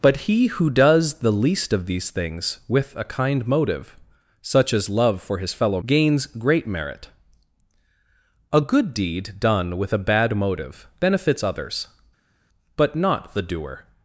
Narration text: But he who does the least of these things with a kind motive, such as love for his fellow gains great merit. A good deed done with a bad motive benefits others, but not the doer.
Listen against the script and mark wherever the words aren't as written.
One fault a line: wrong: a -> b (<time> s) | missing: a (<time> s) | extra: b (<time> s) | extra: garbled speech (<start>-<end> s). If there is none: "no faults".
no faults